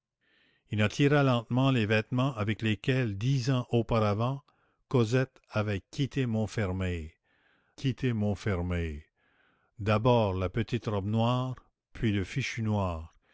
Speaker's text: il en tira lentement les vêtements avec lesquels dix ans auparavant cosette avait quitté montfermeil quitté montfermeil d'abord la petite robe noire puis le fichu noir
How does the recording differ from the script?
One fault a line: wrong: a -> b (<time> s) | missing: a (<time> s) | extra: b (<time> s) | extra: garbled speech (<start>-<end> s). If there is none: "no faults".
no faults